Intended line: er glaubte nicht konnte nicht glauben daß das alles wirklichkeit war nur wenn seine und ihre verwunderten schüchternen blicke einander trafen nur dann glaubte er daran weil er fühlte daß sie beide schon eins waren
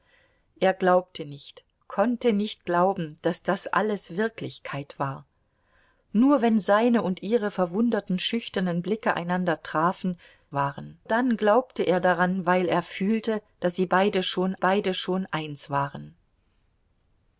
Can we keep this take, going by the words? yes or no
no